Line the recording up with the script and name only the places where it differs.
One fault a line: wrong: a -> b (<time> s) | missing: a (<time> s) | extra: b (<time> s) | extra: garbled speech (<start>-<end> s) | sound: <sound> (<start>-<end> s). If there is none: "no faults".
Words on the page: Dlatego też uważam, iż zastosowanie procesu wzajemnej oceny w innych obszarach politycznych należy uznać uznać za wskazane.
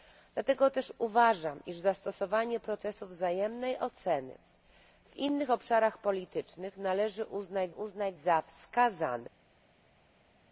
no faults